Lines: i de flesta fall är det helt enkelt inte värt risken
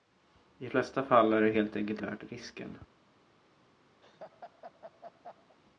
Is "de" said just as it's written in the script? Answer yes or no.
no